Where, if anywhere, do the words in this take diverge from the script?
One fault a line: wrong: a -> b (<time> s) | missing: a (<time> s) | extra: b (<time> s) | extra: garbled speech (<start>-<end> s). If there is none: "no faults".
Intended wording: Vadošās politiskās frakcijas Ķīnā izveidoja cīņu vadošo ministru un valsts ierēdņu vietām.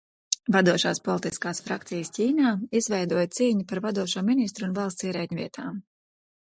extra: par (3.7 s)